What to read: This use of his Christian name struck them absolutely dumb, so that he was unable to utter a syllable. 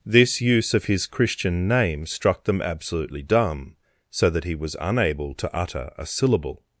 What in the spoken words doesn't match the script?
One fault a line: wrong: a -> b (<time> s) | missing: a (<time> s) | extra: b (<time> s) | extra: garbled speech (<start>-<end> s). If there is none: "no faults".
no faults